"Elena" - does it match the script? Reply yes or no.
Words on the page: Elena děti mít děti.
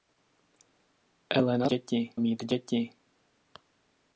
yes